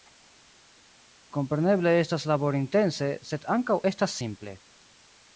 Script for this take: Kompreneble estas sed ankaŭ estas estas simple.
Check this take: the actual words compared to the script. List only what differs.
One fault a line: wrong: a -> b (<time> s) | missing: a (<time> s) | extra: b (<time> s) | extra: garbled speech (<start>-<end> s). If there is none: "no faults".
extra: laborintense (2.3 s)
missing: estas (4.1 s)